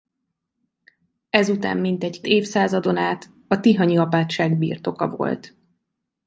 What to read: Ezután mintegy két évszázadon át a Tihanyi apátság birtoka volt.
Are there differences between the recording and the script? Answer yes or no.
yes